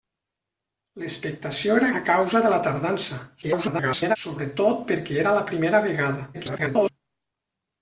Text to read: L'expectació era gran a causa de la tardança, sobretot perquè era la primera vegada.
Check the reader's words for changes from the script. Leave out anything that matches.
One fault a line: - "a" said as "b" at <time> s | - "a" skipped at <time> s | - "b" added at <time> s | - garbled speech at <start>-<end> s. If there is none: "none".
- "gran" skipped at 1.9 s
- garbled speech at 3.4-4.2 s
- garbled speech at 6.3-6.9 s